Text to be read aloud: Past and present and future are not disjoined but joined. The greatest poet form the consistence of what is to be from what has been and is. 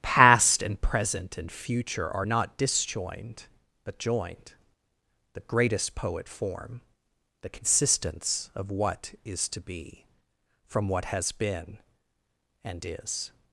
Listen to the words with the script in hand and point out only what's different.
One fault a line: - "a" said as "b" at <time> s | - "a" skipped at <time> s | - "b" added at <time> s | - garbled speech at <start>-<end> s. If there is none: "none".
none